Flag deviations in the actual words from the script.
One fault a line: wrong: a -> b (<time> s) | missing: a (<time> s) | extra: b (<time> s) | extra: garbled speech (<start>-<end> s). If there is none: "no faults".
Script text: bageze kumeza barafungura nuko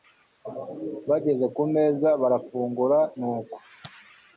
no faults